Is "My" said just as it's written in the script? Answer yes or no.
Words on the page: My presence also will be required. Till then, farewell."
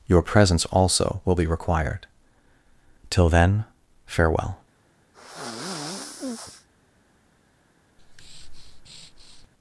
no